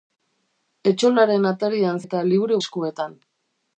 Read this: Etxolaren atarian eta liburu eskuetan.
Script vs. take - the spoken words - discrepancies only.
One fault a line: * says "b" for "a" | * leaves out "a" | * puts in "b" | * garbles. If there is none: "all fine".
all fine